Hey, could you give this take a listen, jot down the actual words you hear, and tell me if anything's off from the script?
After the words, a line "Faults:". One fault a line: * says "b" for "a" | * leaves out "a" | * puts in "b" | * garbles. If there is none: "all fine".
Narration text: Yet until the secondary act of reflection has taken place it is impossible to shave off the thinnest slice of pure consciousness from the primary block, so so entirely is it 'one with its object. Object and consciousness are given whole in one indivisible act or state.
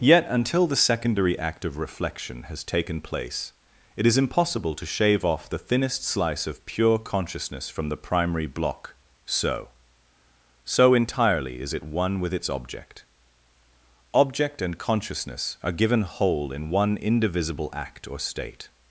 Yet until the secondary act of reflection has taken place it is impossible to shave off the thinnest slice of pure consciousness from the primary block, so so entirely is it 'one with its object. Object and consciousness are given whole in one indivisible act or state.
Faults:
all fine